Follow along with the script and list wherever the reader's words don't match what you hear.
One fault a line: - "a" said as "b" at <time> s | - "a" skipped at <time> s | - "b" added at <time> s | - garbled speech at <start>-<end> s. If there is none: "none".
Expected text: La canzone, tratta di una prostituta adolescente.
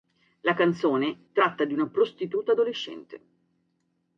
none